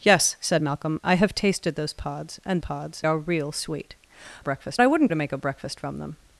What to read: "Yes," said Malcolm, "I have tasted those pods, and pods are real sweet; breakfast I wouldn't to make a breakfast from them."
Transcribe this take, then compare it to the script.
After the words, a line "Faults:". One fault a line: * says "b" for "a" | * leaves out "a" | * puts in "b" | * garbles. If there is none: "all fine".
"Yes," said Malcolm, "I have tasted those pods, and pods are real sweet; breakfast I wouldn't to make a breakfast from them."
Faults:
all fine